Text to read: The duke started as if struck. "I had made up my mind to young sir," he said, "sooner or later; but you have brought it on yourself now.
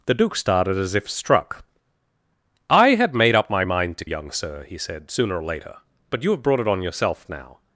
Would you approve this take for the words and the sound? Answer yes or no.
yes